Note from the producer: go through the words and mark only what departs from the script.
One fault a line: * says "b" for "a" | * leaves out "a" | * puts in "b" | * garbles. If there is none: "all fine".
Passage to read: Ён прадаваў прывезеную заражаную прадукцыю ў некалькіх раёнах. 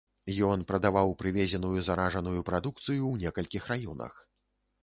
all fine